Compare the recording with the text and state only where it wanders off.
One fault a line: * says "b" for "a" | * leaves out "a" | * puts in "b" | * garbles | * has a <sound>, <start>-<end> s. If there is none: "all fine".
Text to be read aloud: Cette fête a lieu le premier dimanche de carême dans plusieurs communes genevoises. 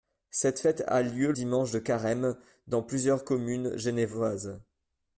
* leaves out "le premier"